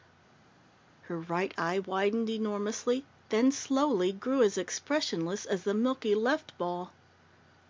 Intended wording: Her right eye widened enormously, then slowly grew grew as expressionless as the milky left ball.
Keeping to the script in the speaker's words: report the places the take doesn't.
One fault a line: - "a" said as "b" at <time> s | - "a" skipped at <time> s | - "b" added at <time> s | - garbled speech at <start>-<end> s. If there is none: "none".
- "grew" skipped at 4.4 s